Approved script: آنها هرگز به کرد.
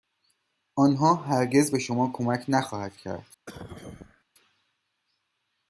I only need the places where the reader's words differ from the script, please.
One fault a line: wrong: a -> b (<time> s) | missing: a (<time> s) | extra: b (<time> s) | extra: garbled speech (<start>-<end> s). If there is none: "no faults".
extra: شما کمک نخواهد (1.8 s)